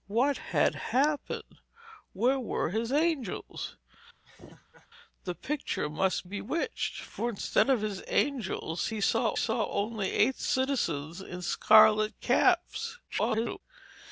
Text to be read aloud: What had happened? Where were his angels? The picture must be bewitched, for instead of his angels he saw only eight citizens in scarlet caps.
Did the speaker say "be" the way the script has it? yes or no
no